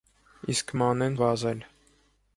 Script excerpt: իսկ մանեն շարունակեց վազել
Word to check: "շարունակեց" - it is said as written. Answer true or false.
false